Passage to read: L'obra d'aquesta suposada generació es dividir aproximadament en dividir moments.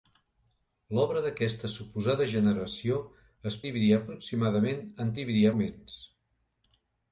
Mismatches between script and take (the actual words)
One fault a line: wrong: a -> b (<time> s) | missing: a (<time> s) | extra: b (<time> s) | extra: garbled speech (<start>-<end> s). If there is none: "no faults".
no faults